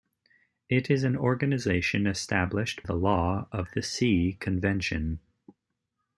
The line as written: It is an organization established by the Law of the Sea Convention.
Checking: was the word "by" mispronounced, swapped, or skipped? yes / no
yes